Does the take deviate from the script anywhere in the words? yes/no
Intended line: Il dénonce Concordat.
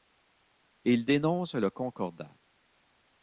yes